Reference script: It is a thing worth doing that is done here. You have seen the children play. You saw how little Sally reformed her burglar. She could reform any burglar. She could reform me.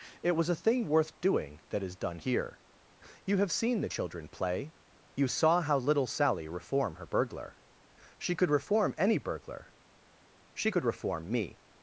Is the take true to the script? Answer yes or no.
no